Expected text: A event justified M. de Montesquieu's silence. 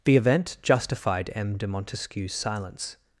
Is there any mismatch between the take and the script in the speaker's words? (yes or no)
yes